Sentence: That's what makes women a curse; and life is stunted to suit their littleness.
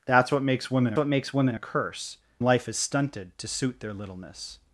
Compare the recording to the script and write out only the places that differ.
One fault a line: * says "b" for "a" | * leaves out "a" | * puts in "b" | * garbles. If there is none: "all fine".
* puts in "what makes women"
* leaves out "and"